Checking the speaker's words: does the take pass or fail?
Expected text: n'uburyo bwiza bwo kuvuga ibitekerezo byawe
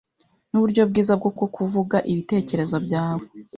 fail